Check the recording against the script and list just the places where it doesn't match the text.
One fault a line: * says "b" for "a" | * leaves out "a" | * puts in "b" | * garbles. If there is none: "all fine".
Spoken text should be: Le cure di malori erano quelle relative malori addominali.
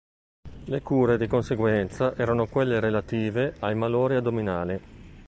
* says "conseguenza" for "malori"
* puts in "ai"